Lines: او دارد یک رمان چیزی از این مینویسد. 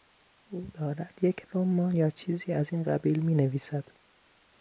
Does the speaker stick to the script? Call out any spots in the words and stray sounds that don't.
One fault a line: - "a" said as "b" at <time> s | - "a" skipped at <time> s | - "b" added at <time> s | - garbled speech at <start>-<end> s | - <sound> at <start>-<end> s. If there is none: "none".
- "یا" added at 1.9 s
- "قبیل" added at 2.8 s